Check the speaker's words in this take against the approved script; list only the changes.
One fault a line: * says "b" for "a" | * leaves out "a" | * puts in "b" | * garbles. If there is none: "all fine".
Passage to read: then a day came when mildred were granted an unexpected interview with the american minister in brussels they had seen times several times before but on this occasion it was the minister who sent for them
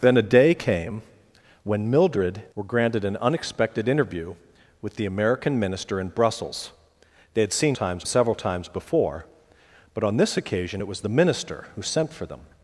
all fine